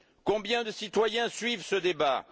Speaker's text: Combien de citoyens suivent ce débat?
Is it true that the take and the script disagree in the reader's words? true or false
false